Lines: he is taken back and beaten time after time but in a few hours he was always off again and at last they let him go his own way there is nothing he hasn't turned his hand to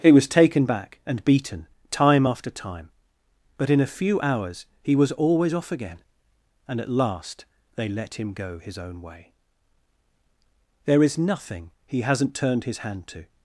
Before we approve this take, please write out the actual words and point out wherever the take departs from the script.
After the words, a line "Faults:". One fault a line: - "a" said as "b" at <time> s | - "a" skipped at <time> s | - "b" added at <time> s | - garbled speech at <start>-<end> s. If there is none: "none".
he was taken back and beaten time after time but in a few hours he was always off again and at last they let him go his own way there is nothing he hasn't turned his hand to
Faults:
- "is" said as "was" at 0.1 s